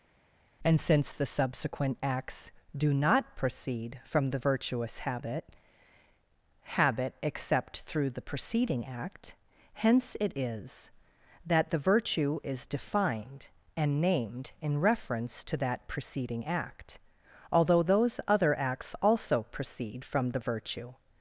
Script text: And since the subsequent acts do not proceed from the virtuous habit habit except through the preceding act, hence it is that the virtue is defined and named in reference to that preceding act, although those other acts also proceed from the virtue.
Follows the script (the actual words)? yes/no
yes